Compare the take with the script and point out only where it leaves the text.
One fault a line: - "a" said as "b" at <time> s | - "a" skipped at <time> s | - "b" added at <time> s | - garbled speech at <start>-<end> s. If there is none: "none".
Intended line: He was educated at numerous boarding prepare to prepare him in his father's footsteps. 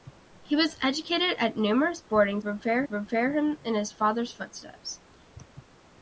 none